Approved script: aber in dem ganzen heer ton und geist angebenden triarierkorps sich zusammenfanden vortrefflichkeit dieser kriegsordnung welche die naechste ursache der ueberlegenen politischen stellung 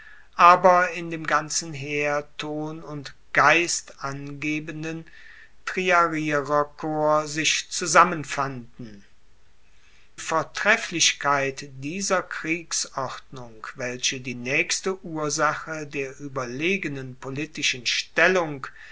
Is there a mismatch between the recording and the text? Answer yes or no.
no